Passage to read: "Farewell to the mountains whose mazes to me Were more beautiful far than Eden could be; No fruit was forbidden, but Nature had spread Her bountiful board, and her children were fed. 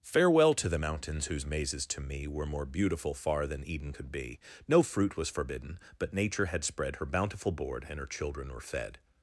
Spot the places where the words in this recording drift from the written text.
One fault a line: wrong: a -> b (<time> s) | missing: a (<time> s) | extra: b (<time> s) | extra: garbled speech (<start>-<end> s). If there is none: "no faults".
no faults